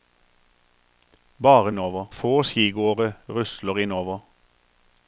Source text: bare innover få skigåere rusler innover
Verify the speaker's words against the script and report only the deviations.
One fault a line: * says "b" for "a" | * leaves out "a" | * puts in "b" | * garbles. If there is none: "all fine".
all fine